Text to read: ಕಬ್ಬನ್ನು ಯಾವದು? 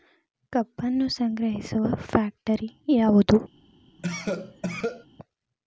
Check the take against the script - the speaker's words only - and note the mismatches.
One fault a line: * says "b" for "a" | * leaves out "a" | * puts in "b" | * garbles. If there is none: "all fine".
* puts in "ಸಂಗ್ರಹಿಸುವ ಫ್ಯಾಕ್ಟರಿ"